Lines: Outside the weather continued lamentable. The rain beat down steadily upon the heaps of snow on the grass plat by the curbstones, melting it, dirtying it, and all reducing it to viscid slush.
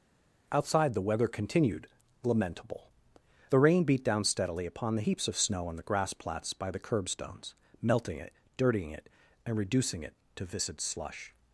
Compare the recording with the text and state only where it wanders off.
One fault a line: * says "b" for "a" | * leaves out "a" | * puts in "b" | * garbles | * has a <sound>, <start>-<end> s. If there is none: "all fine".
* says "plats" for "plat"
* leaves out "all"